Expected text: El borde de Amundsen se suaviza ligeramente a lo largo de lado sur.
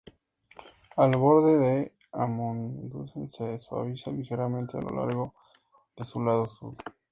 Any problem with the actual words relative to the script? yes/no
yes